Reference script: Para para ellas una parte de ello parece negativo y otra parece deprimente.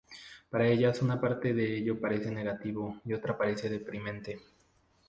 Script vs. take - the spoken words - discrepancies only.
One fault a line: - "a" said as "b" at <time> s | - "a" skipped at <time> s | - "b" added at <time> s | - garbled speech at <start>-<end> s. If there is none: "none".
- "para" skipped at 0.7 s